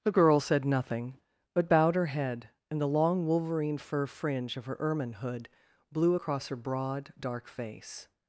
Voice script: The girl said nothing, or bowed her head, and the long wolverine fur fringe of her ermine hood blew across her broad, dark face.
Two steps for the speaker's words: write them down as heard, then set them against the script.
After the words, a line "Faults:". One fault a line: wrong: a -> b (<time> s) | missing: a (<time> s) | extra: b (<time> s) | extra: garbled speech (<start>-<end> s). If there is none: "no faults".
The girl said nothing, but bowed her head, and the long wolverine fur fringe of her ermine hood blew across her broad, dark face.
Faults:
wrong: or -> but (1.5 s)